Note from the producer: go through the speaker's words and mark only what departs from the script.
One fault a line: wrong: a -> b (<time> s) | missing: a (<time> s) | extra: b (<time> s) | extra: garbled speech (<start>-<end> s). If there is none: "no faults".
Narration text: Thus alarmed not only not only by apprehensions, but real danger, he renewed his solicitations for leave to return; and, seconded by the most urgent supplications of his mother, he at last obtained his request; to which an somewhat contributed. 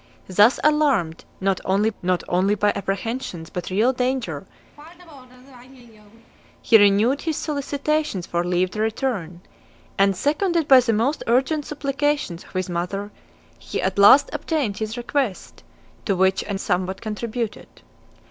no faults